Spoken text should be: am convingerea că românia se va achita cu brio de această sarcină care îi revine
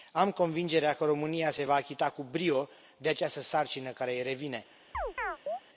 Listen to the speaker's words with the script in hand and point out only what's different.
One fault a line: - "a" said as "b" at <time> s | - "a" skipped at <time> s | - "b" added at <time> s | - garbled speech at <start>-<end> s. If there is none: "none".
none